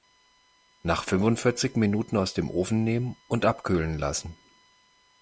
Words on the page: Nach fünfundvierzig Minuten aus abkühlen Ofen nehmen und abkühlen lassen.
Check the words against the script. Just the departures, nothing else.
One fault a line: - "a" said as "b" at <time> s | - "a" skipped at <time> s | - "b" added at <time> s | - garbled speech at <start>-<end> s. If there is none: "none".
- "abkühlen" said as "dem" at 2.3 s